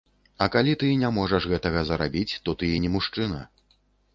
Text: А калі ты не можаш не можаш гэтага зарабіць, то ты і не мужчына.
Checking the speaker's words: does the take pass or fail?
fail